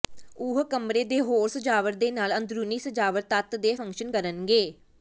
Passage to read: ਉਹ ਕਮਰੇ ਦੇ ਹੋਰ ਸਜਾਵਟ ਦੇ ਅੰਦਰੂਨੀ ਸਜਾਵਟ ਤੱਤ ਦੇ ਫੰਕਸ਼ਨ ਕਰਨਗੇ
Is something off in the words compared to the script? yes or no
yes